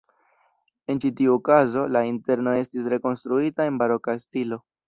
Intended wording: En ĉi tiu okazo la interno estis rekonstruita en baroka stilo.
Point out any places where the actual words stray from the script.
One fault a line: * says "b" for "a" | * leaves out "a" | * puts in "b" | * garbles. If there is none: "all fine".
all fine